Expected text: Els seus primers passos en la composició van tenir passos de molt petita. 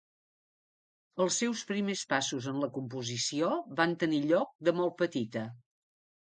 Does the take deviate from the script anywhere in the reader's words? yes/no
yes